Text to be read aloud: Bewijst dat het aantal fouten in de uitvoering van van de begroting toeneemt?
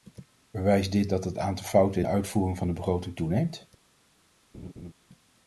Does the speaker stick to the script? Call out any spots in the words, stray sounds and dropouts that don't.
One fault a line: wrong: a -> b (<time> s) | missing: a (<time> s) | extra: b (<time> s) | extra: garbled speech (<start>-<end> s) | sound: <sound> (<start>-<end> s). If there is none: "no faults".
extra: dit (0.9 s)
missing: van (2.7 s)
sound: laugh (4.5-4.9 s)